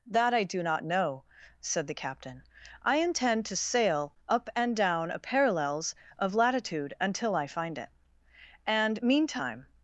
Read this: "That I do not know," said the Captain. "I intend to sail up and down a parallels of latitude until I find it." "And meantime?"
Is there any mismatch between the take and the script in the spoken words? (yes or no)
no